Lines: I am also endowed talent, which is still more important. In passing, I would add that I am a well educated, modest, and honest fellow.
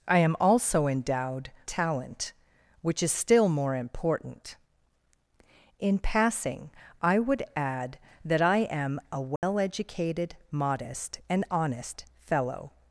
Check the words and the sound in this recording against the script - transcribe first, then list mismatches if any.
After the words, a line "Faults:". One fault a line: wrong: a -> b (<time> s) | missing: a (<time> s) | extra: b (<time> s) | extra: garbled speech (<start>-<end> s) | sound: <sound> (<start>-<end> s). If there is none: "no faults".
I am also endowed talent, which is still more important. In passing, I would add that I am a well educated, modest, and honest fellow.
Faults:
sound: dropout (9.4-9.4 s)